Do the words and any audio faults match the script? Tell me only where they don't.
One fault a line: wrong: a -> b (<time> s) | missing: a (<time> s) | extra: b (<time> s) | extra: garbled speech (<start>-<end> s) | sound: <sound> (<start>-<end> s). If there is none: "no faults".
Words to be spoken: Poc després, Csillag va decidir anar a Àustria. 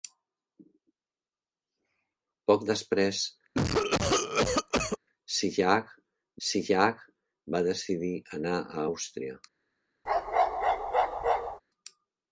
sound: cough (3.5-5.0 s)
extra: Csillag (6.5 s)
sound: bark (10.1-11.6 s)